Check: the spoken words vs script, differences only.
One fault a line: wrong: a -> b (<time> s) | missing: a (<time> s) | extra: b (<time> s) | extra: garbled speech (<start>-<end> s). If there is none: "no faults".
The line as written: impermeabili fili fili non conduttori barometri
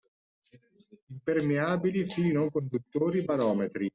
missing: fili (2.3 s)